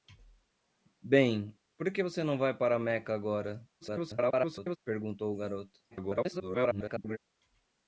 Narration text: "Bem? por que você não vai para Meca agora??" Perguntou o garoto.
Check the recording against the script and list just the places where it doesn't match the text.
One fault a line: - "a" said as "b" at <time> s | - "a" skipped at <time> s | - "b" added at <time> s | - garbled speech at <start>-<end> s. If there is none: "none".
- garbled speech at 3.8-4.8 s
- garbled speech at 5.9-7.2 s